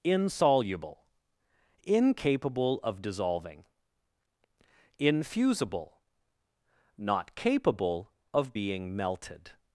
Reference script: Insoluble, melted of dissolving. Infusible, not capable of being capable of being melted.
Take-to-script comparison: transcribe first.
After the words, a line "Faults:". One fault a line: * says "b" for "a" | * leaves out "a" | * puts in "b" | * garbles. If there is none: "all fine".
Insoluble, incapable of dissolving. Infusible, not capable of being melted.
Faults:
* says "incapable" for "melted"
* leaves out "capable of being"